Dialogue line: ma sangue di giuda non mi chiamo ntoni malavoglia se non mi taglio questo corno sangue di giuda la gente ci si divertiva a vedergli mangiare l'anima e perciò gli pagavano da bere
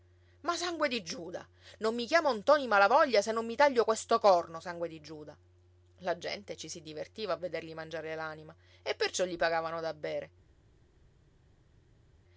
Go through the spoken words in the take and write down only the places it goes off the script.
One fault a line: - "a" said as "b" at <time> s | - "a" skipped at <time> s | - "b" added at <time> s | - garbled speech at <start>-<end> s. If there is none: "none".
none